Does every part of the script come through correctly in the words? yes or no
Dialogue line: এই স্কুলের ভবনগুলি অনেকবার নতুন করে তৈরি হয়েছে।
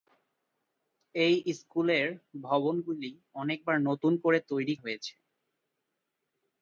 yes